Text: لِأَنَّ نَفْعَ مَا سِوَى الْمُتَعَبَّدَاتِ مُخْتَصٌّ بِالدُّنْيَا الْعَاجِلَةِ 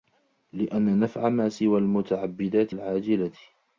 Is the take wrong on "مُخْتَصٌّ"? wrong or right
wrong